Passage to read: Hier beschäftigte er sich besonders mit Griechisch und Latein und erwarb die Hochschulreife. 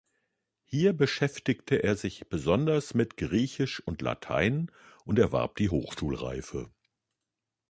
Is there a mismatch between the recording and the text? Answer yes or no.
no